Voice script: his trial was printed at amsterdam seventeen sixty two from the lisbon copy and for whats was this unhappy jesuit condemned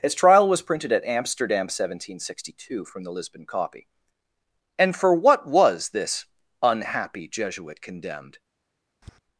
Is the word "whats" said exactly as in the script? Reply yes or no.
no